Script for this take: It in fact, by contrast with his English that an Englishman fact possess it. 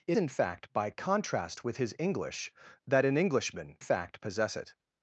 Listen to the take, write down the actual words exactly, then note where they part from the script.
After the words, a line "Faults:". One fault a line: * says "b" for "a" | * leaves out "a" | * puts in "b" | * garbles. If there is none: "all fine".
It in fact, by contrast with his English that an Englishman fact possess it.
Faults:
all fine